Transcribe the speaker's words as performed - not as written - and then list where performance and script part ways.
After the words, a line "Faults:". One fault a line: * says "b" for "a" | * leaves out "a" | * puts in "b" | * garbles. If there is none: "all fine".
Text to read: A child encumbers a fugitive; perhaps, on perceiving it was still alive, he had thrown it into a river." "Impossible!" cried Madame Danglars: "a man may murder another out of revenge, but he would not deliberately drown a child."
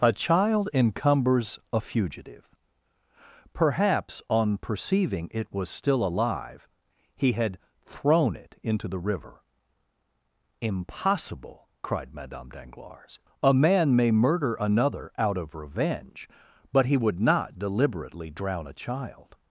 A child encumbers a fugitive; perhaps, on perceiving it was still alive, he had thrown it into the river." "Impossible!" cried Madame Danglars: "a man may murder another out of revenge, but he would not deliberately drown a child."
Faults:
* says "the" for "a"